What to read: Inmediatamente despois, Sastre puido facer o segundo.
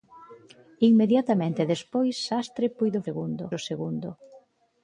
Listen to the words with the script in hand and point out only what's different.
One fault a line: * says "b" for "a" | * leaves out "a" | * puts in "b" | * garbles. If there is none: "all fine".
* says "segundo" for "facer"